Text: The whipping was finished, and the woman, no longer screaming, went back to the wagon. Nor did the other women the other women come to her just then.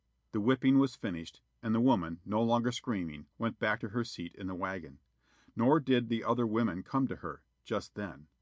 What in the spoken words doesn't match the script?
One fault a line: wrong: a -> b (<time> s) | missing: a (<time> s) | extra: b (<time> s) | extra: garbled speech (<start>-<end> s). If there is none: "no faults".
extra: her seat in (3.9 s)
missing: the other women (6.8 s)